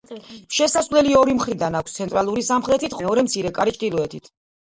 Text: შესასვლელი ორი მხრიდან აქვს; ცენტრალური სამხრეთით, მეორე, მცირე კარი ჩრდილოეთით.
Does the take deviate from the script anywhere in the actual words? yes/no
no